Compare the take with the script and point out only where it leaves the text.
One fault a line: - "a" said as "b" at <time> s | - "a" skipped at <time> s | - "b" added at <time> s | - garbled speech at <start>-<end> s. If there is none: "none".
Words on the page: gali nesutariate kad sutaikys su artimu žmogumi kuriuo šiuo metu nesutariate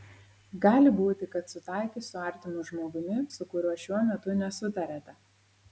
- "nesutariate" said as "būti" at 1.0 s
- "su" added at 3.4 s